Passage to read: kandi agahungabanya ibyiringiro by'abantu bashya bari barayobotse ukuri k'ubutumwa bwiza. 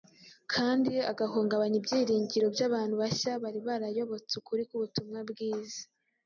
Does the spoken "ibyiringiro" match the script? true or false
true